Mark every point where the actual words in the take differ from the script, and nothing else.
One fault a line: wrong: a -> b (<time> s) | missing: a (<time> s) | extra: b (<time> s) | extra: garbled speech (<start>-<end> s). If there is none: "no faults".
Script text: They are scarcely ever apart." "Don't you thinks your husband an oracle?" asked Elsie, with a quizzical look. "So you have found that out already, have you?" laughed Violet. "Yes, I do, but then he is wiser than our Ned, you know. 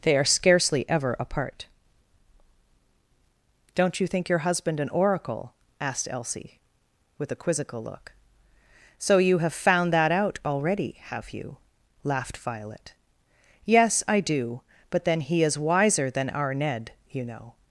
wrong: thinks -> think (4.1 s)